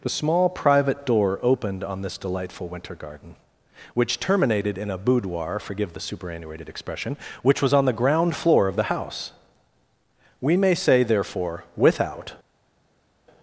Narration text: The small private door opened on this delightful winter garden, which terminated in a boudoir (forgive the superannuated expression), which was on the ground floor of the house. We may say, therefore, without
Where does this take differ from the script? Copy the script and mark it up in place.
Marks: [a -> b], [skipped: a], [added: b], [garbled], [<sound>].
The small private door opened on this delightful winter garden, which terminated in a boudoir (forgive the superannuated expression), which was on the ground floor of the house. We may say, therefore, without